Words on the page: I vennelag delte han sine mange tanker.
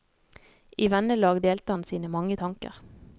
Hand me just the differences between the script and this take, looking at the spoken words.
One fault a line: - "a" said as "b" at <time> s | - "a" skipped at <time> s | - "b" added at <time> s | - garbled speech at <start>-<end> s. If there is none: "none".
none